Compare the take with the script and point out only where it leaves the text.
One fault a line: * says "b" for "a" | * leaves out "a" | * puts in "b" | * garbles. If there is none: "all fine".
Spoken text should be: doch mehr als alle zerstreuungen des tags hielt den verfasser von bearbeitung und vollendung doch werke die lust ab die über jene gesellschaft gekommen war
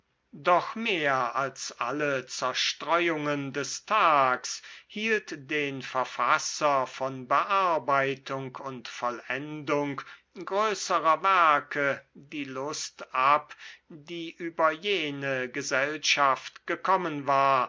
* says "größerer" for "doch"